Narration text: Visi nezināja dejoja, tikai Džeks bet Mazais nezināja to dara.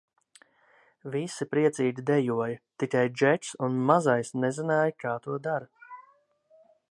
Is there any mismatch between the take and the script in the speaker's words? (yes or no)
yes